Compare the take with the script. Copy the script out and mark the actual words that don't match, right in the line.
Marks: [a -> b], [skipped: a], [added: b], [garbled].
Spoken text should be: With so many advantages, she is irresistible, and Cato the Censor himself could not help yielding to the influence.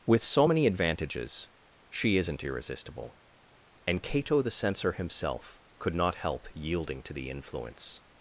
With so many advantages, she [is -> isn't] irresistible, and Cato the Censor himself could not help yielding to the influence.